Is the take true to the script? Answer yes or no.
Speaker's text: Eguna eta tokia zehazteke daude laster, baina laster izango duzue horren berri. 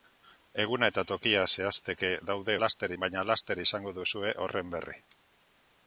yes